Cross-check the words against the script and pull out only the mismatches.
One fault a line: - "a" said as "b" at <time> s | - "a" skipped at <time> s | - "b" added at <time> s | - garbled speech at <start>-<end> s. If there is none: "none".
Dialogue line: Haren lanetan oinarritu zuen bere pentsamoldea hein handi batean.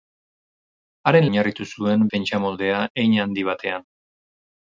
- "lanetan" skipped at 1.3 s
- "bere" skipped at 2.0 s